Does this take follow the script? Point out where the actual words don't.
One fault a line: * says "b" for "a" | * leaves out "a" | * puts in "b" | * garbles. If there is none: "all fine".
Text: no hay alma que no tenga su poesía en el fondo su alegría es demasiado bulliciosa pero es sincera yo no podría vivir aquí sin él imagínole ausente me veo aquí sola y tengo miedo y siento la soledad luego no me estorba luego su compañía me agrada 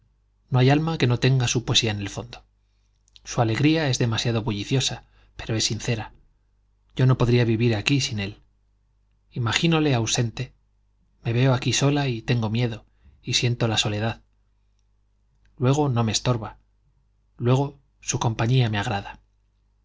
all fine